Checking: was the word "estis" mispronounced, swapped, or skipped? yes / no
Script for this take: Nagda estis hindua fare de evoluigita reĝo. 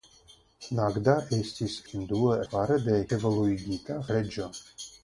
no